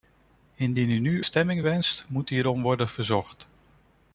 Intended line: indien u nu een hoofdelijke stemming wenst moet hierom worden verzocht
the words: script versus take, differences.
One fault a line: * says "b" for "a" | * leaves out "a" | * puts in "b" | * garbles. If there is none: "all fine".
* leaves out "een hoofdelijke"